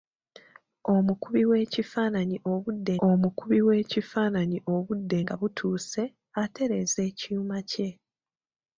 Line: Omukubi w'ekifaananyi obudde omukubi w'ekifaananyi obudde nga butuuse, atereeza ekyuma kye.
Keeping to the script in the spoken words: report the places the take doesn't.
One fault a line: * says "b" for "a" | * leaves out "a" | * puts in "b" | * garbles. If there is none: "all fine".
all fine